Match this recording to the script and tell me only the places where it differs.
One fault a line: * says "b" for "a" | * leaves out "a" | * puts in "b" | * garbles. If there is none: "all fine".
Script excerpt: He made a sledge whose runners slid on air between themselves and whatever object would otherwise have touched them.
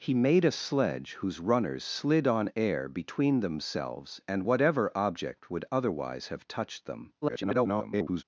* garbles